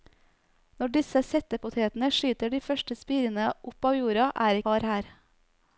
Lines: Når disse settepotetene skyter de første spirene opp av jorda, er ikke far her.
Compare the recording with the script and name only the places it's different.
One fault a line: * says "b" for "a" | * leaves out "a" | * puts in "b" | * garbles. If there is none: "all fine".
* leaves out "ikke"